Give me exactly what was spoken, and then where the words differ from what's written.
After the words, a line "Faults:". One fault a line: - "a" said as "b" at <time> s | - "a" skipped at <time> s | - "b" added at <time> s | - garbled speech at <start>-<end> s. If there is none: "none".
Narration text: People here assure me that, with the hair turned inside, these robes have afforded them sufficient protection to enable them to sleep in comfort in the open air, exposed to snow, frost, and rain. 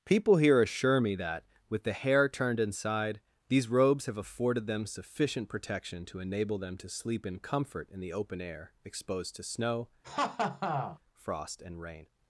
People here assure me that, with the hair turned inside, these robes have afforded them sufficient protection to enable them to sleep in comfort in the open air, exposed to snow, frost, and rain.
Faults:
none